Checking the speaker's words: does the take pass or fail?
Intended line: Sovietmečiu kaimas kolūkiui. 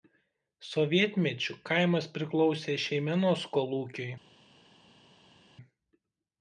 fail